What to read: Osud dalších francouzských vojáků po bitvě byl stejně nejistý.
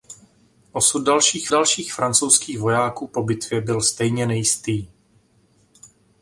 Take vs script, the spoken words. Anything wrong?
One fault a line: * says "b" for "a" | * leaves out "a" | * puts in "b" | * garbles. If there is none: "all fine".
* puts in "dalších"